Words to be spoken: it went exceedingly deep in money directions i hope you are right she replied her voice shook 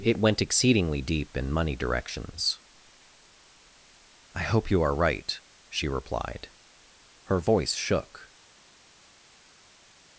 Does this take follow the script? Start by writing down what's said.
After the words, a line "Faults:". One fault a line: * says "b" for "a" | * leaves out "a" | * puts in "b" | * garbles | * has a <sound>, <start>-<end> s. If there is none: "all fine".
it went exceedingly deep in money directions i hope you are right she replied her voice shook
Faults:
all fine